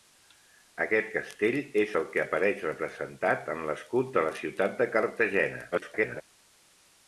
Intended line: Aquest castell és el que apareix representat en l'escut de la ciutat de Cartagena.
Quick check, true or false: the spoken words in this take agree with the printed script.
false